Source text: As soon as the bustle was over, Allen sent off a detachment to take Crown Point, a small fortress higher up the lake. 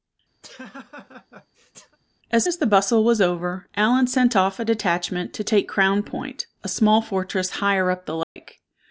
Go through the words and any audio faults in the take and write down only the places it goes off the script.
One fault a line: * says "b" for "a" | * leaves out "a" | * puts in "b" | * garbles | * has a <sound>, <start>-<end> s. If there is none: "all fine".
* has a laugh, 0.4-2.0 s
* leaves out "soon"
* has a dropout, 8.2-8.4 s